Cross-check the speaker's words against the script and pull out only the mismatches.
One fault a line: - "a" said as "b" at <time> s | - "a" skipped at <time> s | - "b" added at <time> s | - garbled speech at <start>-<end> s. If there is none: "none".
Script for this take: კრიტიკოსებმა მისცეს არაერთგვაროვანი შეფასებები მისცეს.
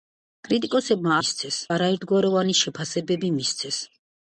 none